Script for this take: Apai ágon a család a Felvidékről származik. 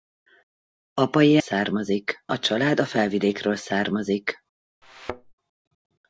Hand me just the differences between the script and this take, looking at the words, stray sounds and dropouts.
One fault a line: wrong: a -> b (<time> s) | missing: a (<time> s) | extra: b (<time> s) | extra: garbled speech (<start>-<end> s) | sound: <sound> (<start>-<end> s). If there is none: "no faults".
wrong: ágon -> származik (1.4 s)
sound: thud (4.8-5.3 s)